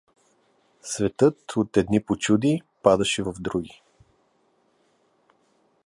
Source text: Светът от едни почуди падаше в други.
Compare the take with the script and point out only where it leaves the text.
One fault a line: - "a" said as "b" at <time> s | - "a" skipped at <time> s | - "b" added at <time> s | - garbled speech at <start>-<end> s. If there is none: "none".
none